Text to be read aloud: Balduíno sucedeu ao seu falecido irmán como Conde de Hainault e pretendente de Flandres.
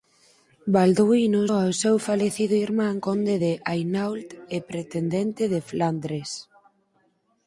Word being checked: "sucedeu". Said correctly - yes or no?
no